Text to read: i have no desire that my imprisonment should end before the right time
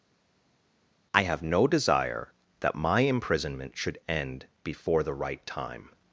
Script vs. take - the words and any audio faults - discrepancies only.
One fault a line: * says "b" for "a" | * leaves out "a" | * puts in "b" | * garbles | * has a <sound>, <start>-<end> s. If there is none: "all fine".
all fine